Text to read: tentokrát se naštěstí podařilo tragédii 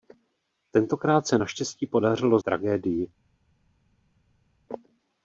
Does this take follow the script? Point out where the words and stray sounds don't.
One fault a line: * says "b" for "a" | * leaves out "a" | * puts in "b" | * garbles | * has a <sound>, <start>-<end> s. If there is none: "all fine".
all fine